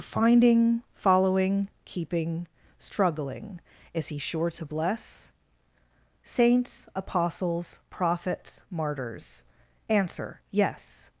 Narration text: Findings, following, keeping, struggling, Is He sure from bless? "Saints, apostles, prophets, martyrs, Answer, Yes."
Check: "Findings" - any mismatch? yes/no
yes